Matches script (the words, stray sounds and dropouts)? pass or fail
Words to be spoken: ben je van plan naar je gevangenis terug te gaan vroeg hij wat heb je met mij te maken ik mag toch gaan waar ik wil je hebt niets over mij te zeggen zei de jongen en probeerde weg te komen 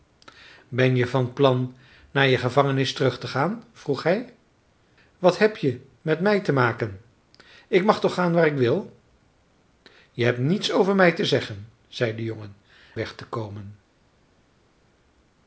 fail